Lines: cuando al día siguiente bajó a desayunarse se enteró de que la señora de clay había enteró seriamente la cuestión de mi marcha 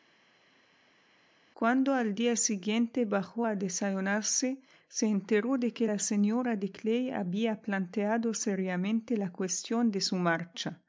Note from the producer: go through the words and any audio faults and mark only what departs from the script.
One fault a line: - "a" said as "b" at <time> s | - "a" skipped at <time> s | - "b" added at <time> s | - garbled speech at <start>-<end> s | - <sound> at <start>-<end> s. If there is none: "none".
- "enteró" said as "planteado" at 7.6 s
- "mi" said as "su" at 10.0 s